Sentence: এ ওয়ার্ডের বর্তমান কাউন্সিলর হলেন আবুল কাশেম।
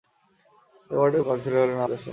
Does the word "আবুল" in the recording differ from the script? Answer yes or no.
yes